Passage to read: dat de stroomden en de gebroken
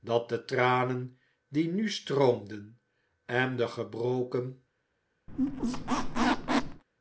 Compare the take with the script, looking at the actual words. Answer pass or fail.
fail